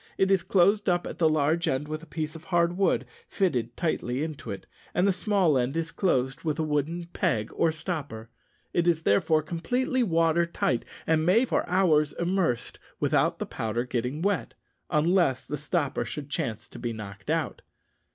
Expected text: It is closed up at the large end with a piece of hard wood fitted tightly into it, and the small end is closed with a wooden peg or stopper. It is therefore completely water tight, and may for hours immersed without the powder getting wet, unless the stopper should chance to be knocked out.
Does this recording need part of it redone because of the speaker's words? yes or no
no